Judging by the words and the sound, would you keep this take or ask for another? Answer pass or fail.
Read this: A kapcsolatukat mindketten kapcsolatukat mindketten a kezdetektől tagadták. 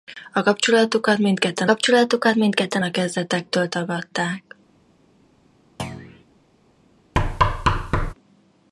fail